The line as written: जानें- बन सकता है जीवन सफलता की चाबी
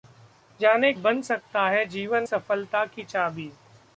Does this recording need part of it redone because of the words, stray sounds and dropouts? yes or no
no